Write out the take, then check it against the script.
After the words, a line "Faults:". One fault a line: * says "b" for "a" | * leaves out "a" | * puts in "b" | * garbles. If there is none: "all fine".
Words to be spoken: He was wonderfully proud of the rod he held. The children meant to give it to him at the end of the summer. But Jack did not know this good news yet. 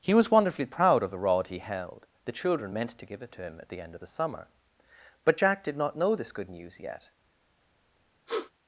He was wonderfully proud of the rod he held. The children meant to give it to him at the end of the summer. But Jack did not know this good news yet.
Faults:
all fine